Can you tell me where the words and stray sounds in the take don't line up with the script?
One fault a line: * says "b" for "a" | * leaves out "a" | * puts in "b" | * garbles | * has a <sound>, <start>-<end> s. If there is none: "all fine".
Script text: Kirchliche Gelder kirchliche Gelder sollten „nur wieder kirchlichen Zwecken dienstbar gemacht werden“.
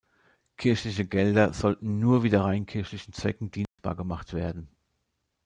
* leaves out "kirchliche Gelder"
* puts in "rein"
* has a dropout, 3.7-3.8 s